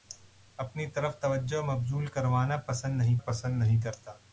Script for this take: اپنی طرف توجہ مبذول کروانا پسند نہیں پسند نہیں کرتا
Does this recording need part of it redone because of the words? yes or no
no